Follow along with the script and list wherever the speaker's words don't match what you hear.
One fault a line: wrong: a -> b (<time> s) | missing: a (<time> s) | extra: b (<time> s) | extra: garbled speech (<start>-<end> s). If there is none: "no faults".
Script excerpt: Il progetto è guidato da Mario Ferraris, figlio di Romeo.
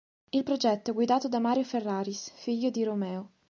no faults